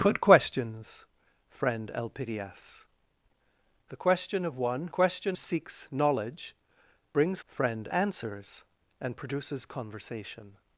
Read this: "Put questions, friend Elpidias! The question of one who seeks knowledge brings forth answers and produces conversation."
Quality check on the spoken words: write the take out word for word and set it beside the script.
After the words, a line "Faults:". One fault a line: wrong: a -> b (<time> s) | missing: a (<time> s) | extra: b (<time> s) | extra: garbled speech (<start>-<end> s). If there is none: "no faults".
"Put questions, friend Elpidias! The question of one question seeks knowledge brings friend answers and produces conversation."
Faults:
wrong: who -> question (4.9 s)
wrong: forth -> friend (7.5 s)